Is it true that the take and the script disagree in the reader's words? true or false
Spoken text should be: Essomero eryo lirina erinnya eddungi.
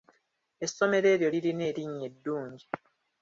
false